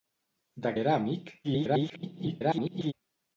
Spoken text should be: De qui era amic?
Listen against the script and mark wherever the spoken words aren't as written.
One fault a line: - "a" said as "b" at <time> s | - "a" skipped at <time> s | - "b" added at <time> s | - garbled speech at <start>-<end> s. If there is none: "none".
- "qui" skipped at 0.7 s
- garbled speech at 1.4-2.9 s